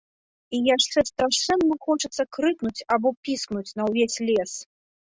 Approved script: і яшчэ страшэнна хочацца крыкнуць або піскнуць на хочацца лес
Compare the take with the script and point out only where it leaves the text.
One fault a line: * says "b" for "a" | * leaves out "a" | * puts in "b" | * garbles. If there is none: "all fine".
* says "ўвесь" for "хочацца"